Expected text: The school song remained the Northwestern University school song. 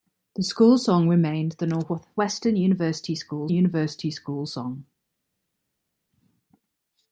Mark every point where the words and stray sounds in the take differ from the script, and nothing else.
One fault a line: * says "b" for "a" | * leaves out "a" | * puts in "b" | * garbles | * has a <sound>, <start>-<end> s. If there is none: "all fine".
* puts in "University school"